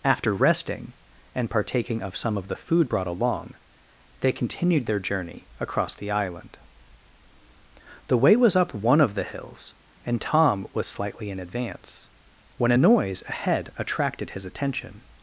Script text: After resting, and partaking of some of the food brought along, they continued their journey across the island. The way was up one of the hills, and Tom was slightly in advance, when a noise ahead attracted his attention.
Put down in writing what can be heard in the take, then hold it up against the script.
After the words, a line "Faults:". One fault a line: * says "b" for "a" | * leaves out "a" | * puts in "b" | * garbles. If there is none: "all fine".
After resting, and partaking of some of the food brought along, they continued their journey across the island. The way was up one of the hills, and Tom was slightly in advance, when a noise ahead attracted his attention.
Faults:
all fine